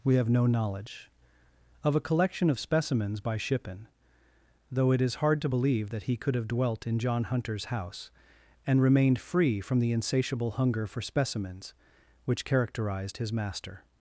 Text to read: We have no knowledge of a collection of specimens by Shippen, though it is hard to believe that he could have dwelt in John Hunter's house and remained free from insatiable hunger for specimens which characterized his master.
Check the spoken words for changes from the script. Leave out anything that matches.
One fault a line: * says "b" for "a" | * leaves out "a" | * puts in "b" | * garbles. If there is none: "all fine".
* puts in "the"